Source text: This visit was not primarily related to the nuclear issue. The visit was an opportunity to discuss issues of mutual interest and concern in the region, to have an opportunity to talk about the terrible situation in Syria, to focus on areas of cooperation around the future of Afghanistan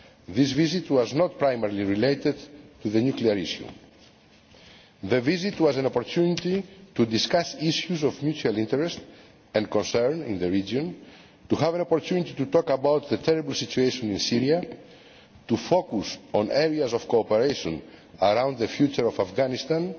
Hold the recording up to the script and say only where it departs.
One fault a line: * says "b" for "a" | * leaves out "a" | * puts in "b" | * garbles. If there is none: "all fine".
all fine